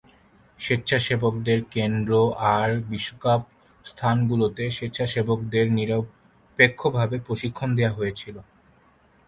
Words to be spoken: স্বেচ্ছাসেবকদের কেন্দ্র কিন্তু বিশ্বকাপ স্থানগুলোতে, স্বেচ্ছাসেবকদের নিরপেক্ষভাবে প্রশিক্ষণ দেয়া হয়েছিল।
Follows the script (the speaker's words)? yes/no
no